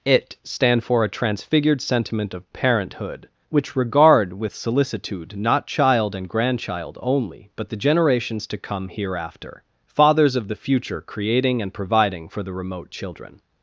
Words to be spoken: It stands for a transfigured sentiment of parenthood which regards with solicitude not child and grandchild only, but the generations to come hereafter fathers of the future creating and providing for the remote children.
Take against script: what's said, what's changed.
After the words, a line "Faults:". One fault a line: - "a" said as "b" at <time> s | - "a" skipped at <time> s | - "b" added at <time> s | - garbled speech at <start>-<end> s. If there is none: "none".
It stand for a transfigured sentiment of parenthood which regard with solicitude not child and grandchild only, but the generations to come hereafter fathers of the future creating and providing for the remote children.
Faults:
- "stands" said as "stand" at 0.4 s
- "regards" said as "regard" at 3.8 s